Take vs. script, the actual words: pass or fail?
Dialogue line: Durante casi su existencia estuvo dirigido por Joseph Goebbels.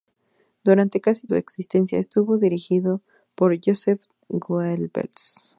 pass